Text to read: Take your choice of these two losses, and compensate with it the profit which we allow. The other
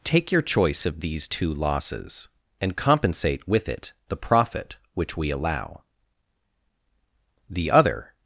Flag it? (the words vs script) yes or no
no